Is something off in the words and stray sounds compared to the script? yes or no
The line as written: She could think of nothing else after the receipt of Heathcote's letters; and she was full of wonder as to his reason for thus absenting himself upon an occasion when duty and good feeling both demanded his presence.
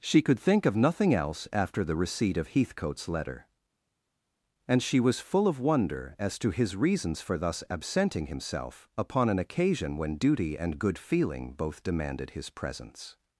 yes